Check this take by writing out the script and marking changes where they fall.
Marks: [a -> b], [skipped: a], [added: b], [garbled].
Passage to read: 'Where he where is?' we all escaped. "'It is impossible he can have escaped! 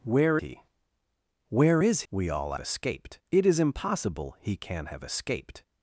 'Where he where is?' we all escaped. "'It is impossible he can have escaped!